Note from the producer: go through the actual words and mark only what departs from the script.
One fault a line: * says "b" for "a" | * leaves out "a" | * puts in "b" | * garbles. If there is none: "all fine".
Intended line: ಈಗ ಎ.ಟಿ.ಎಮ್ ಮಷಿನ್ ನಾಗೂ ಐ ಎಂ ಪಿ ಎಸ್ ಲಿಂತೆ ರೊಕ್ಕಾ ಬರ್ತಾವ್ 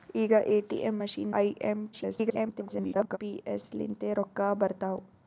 * leaves out "ನಾಗೂ"
* garbles